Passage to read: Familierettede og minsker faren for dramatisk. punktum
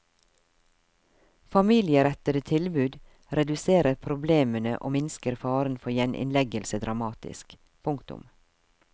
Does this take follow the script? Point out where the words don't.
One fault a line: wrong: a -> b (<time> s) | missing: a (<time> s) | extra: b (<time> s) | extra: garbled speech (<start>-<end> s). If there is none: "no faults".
extra: tilbud reduserer problemene (2.5 s)
extra: gjeninnleggelse (6.0 s)